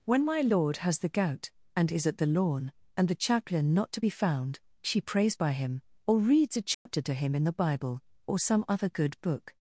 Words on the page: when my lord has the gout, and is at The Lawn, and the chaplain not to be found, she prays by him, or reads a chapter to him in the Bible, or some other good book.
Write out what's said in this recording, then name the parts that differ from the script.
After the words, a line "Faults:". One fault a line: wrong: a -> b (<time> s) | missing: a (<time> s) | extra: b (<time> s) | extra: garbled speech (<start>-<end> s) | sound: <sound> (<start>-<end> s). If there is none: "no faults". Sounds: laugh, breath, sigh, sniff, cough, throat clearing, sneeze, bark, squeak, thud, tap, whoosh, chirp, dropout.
when my lord has the gout, and is at The Lawn, and the chaplain not to be found, she prays by him, or reads a chapter to him in the Bible, or some other good book.
Faults:
sound: dropout (6.7-6.9 s)